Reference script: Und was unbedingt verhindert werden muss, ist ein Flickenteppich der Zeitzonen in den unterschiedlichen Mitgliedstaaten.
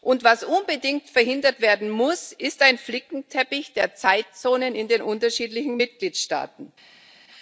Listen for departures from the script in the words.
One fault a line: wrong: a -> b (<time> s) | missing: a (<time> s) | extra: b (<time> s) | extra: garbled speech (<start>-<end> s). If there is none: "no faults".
no faults